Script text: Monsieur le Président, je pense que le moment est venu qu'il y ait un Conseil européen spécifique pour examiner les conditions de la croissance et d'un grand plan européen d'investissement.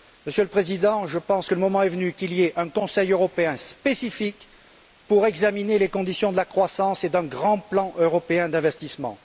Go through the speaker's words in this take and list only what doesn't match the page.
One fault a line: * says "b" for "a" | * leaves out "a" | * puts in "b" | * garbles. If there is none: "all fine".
all fine